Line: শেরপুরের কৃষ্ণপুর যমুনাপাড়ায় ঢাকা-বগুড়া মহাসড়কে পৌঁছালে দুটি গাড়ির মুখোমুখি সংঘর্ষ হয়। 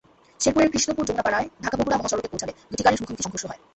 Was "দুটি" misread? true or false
false